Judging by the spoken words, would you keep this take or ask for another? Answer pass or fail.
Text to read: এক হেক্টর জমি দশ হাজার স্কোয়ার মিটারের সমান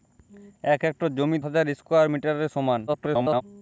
fail